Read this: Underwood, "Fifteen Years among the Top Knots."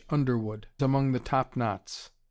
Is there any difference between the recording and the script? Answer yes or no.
yes